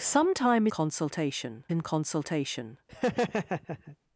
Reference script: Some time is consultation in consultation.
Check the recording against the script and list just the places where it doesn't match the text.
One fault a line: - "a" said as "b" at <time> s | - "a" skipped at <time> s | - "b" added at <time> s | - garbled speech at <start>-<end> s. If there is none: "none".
none